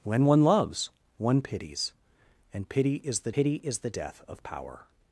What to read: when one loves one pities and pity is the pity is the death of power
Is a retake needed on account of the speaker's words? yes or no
no